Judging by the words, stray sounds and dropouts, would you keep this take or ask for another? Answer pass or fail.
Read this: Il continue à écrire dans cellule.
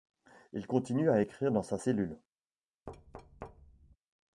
fail